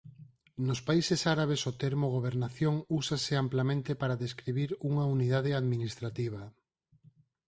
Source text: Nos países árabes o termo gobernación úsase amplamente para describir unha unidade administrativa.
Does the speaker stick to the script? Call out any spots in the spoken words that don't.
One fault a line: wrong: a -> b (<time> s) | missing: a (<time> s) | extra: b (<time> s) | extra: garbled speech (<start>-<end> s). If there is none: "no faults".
no faults